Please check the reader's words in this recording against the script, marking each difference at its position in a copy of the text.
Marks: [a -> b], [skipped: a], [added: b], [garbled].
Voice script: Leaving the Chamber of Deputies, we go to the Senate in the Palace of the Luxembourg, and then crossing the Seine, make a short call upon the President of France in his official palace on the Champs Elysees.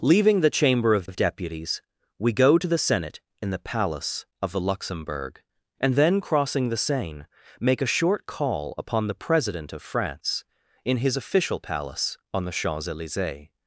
Leaving the Chamber of [added: of] Deputies, we go to the Senate in the Palace of the Luxembourg, and then crossing the Seine, make a short call upon the President of France in his official palace on the Champs Elysees.